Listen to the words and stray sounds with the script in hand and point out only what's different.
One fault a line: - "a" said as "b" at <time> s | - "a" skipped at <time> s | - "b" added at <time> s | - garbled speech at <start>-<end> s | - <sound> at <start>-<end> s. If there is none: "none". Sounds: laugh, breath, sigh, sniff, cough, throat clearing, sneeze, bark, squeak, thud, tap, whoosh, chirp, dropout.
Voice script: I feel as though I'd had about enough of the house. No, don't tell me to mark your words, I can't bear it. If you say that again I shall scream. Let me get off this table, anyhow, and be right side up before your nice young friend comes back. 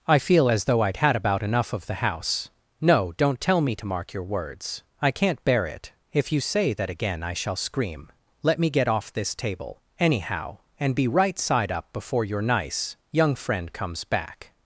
none